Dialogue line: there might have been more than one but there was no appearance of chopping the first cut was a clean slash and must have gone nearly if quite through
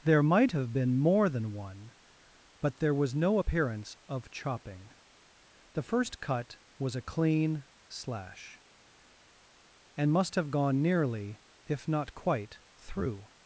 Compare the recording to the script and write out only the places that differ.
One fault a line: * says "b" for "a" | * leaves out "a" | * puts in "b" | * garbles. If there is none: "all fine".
* puts in "not"